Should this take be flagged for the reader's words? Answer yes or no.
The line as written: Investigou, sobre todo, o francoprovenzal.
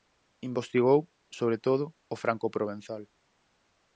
no